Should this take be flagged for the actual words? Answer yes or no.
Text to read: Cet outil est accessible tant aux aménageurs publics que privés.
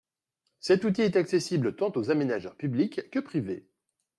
no